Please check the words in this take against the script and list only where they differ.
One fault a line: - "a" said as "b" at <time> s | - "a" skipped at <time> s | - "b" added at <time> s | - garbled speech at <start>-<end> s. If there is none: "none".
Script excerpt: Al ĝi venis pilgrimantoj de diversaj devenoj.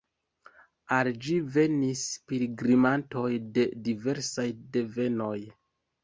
none